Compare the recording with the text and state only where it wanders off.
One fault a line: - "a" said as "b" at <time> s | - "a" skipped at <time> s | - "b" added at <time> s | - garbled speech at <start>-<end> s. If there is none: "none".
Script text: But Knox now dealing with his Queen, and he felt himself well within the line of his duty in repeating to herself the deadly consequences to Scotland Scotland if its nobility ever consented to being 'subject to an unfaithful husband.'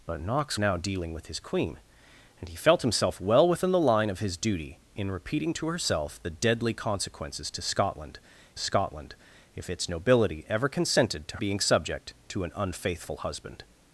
none